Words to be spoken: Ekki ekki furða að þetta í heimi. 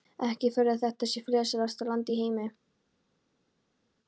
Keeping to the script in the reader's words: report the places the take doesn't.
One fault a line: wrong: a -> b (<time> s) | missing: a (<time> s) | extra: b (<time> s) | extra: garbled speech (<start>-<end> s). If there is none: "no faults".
missing: ekki (0.5 s)
extra: sé friðsælasta land (1.1 s)